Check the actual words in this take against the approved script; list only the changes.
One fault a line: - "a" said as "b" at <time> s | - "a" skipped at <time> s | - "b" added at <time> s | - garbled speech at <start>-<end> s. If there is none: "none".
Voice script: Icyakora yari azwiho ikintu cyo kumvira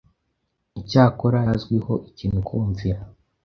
- "yari" skipped at 1.4 s
- "cyo" skipped at 2.4 s